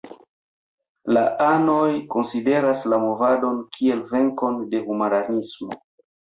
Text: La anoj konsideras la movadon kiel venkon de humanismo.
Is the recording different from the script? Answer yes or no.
no